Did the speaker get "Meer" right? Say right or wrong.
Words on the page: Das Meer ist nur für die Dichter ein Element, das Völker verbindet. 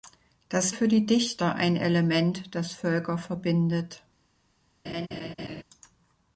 wrong